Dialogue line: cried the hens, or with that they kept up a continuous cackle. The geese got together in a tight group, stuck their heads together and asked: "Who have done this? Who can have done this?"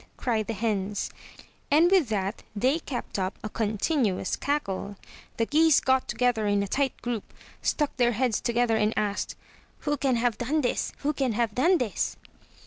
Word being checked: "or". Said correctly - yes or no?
no